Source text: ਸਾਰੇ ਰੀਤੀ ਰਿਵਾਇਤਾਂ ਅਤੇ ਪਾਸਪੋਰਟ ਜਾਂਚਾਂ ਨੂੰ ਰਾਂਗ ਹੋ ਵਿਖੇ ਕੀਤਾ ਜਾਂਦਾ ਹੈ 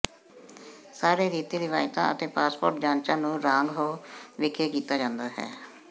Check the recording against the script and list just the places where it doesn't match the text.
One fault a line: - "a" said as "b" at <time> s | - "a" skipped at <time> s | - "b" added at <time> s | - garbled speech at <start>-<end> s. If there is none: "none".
none